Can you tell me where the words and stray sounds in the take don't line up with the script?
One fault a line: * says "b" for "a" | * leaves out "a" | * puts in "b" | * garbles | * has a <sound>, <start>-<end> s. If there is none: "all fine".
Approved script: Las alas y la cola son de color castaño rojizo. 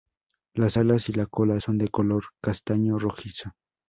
all fine